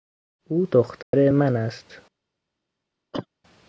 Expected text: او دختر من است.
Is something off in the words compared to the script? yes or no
no